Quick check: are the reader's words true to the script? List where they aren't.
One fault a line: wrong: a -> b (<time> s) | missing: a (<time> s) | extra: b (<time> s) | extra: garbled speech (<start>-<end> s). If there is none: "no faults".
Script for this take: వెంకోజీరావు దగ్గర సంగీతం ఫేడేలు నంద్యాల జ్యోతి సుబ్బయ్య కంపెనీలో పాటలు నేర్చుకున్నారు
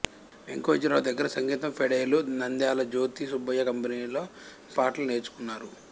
no faults